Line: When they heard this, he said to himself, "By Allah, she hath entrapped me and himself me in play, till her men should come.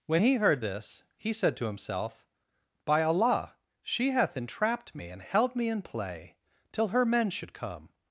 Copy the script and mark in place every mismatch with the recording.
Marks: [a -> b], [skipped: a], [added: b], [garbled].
When [they -> he] heard this, he said to himself, "By Allah, she hath entrapped me and [himself -> held] me in play, till her men should come.